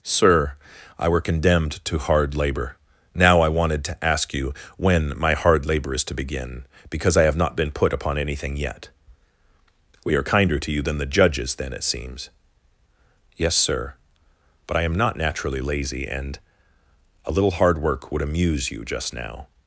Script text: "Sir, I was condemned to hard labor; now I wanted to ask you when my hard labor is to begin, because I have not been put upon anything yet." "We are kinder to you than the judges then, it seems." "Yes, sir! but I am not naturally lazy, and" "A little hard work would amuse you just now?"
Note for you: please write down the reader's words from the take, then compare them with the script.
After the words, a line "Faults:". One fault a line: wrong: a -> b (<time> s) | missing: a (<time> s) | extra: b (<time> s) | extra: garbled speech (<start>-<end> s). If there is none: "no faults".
"Sir, I were condemned to hard labor; now I wanted to ask you when my hard labor is to begin, because I have not been put upon anything yet." "We are kinder to you than the judges then, it seems." "Yes, sir! but I am not naturally lazy, and" "A little hard work would amuse you just now?"
Faults:
wrong: was -> were (1.1 s)